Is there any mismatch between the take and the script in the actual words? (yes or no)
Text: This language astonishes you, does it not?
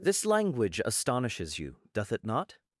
yes